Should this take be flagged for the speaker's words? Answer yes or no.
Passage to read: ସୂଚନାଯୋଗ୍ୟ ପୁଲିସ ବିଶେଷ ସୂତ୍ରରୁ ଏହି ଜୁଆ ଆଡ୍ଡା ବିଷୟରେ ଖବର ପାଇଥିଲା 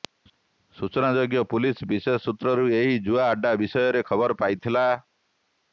no